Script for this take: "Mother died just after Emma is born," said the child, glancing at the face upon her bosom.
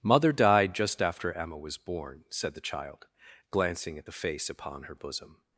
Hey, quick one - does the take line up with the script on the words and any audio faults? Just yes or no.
no